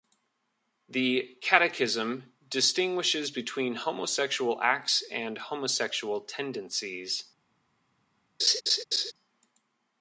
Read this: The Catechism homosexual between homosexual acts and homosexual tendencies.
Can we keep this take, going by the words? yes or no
no